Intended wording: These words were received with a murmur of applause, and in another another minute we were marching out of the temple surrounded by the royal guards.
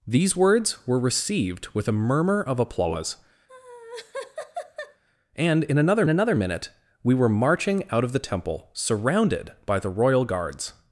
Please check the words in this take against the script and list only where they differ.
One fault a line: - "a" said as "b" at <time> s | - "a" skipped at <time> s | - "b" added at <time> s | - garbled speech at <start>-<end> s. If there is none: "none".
none